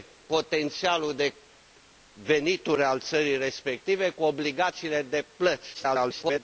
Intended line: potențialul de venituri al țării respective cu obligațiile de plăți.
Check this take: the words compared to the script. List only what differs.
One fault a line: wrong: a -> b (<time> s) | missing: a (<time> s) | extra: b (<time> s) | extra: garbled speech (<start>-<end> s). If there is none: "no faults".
extra: garbled speech (5.7-6.4 s)